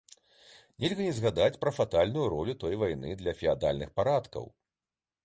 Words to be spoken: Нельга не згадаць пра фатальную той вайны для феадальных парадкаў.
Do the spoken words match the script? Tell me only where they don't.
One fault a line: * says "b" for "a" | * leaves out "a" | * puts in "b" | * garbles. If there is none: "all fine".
* puts in "ролю"